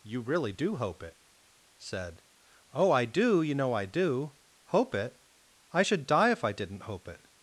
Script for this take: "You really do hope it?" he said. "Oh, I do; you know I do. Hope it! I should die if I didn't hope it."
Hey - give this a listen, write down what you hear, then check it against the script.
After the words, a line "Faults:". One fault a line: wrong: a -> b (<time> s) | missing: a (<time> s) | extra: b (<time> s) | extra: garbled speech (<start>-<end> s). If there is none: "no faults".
"You really do hope it?" said. "Oh, I do; you know I do. Hope it! I should die if I didn't hope it."
Faults:
missing: he (1.2 s)